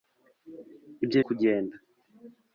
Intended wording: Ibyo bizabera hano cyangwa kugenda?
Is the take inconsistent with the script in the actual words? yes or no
yes